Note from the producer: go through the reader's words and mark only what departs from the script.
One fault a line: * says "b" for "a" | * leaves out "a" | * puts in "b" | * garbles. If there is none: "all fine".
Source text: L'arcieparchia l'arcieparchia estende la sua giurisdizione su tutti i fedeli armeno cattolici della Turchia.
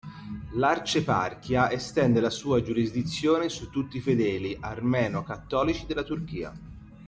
* leaves out "l'arcieparchia"